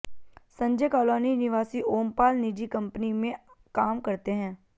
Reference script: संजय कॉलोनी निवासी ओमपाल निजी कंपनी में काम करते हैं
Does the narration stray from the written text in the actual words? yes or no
no